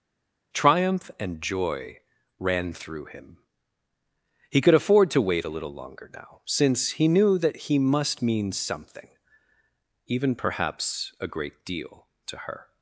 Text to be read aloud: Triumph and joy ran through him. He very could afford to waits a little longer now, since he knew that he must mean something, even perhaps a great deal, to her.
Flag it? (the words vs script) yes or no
yes